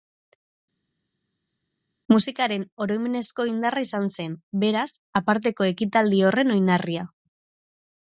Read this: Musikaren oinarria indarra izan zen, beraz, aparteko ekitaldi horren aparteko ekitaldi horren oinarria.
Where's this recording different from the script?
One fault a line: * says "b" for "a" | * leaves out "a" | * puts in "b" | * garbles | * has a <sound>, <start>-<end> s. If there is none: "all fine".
* says "oroimenezko" for "oinarria"
* leaves out "aparteko ekitaldi horren"